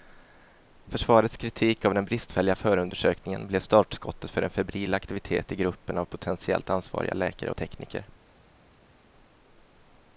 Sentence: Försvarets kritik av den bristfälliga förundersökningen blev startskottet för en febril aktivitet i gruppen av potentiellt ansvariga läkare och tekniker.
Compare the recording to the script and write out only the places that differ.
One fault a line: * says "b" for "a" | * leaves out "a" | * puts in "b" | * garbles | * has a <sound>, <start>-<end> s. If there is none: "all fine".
* leaves out "och"